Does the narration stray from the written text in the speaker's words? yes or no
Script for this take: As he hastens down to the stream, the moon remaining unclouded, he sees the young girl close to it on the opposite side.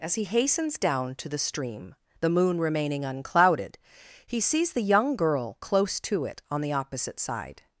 no